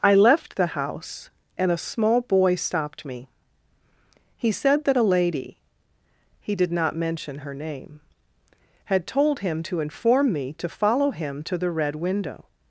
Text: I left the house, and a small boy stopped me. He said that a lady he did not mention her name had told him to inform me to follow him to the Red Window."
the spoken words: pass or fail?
pass